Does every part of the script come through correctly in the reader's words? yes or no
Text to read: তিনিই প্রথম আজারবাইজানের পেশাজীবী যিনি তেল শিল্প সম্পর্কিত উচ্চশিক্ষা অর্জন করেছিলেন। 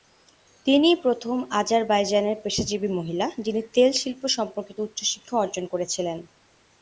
no